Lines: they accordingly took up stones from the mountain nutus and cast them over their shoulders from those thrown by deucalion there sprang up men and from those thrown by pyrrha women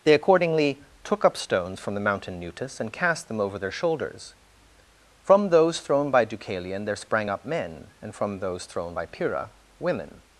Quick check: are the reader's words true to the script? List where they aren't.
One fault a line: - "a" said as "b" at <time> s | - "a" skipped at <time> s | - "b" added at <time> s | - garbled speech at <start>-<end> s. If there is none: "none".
none